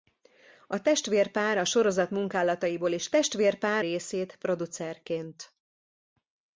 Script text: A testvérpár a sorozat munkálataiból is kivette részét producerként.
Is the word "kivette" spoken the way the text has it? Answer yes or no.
no